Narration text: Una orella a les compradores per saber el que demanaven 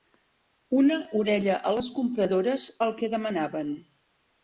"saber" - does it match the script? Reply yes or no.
no